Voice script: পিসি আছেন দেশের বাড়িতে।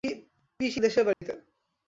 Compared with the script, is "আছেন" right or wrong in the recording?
wrong